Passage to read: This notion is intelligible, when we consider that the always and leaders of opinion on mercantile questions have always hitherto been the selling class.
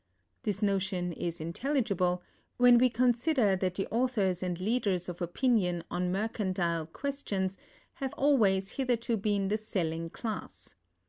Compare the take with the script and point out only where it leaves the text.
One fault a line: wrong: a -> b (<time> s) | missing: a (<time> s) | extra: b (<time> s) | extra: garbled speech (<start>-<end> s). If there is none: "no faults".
wrong: always -> authors (3.9 s)